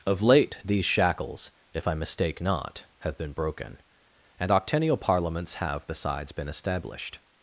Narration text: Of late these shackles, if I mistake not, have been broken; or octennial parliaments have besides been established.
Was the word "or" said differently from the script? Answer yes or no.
yes